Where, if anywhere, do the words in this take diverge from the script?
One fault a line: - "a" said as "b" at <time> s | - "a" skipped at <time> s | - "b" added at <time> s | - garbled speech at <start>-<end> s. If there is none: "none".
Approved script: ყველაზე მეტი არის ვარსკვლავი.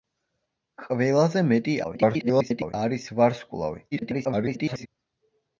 - garbled speech at 1.8-2.7 s
- garbled speech at 3.9-4.9 s